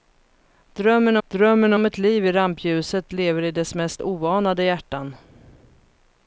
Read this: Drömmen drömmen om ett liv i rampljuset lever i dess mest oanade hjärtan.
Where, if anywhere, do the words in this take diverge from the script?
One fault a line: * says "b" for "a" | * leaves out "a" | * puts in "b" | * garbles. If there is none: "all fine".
all fine